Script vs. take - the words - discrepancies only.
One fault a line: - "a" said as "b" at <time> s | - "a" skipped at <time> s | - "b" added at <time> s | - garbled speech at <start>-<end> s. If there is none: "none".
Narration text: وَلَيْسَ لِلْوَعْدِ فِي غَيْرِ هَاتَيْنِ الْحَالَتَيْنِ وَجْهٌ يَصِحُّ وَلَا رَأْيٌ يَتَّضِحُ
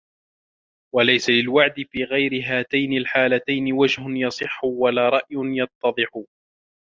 none